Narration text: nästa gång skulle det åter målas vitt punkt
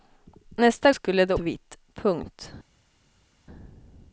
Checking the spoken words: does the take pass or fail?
fail